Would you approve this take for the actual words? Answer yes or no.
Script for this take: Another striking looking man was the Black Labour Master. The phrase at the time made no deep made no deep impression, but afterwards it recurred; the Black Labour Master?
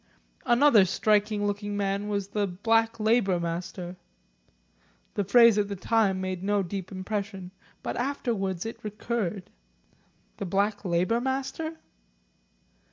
no